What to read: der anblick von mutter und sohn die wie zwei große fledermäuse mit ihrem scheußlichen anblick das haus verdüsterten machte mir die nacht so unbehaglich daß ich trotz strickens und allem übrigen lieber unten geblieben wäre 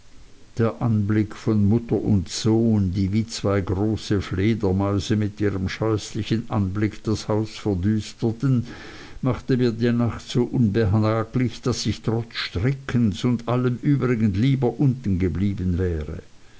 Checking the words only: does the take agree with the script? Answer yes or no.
yes